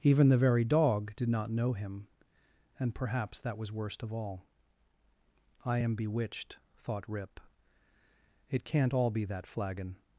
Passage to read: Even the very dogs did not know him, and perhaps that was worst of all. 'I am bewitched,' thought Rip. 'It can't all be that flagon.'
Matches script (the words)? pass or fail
fail